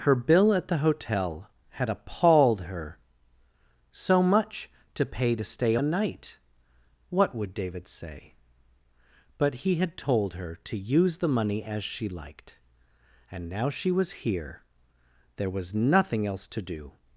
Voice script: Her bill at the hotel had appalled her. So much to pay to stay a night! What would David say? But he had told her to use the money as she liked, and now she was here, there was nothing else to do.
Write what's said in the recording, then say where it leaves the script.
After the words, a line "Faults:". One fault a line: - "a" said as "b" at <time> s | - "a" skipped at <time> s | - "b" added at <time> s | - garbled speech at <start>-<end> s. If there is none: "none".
Her bill at the hotel had appalled her. So much to pay to stay a night! What would David say? But he had told her to use the money as she liked, and now she was here, there was nothing else to do.
Faults:
none